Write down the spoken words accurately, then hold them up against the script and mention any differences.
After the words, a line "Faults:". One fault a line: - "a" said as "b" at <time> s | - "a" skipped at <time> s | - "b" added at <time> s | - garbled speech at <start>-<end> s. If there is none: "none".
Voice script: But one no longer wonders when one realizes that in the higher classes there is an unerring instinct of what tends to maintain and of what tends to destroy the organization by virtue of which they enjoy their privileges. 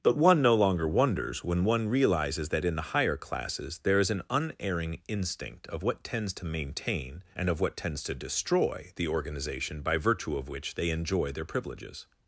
But one no longer wonders when one realizes that in the higher classes there is an unerring instinct of what tends to maintain and of what tends to destroy the organization by virtue of which they enjoy their privileges.
Faults:
none